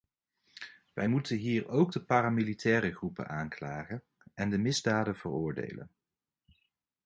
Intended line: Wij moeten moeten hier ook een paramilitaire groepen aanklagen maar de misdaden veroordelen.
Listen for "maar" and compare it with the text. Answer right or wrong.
wrong